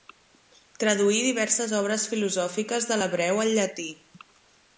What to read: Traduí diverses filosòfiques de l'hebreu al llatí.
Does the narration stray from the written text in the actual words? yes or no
yes